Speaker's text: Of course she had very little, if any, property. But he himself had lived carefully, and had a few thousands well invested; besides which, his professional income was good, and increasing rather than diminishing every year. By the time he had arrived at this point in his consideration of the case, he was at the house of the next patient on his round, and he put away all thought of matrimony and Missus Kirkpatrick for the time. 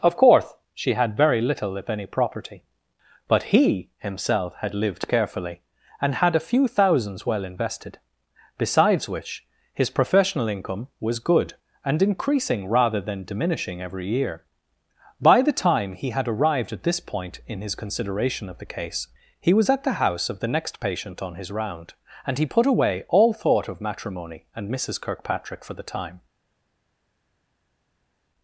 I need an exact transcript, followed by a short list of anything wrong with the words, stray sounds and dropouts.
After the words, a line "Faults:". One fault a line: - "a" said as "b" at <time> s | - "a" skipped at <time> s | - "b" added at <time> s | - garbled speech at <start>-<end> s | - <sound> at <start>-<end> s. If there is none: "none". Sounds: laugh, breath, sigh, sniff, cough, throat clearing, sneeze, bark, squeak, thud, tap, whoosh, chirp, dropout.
Of course she had very little, if any, property. But he himself had lived carefully, and had a few thousands well invested; besides which, his professional income was good, and increasing rather than diminishing every year. By the time he had arrived at this point in his consideration of the case, he was at the house of the next patient on his round, and he put away all thought of matrimony and Missus Kirkpatrick for the time.
Faults:
none